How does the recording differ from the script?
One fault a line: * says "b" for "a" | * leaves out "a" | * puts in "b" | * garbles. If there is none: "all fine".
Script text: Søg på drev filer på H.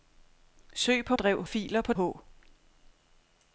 all fine